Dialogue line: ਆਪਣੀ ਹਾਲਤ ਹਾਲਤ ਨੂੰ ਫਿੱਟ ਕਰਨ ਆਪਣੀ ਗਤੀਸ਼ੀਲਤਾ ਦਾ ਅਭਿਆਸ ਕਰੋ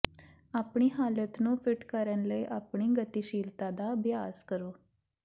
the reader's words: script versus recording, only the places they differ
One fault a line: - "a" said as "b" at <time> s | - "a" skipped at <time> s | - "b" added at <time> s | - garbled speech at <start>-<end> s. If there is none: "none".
- "ਹਾਲਤ" skipped at 1.4 s
- "ਲਈ" added at 2.3 s